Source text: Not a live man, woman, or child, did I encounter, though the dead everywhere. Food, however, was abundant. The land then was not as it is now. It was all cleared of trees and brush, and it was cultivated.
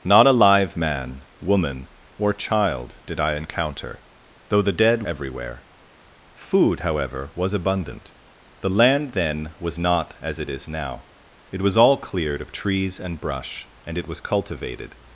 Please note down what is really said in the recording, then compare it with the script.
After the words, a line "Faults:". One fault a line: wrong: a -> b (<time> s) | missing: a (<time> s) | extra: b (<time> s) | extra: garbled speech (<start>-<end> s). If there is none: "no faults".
Not a live man, woman, or child, did I encounter, though the dead everywhere. Food, however, was abundant. The land then was not as it is now. It was all cleared of trees and brush, and it was cultivated.
Faults:
no faults